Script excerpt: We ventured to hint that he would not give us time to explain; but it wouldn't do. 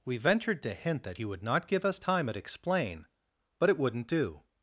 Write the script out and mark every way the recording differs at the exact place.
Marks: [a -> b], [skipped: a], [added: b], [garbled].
We ventured to hint that he would not give us time [to -> at] explain; but it wouldn't do.